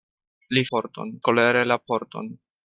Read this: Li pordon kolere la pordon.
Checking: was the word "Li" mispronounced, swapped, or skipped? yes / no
no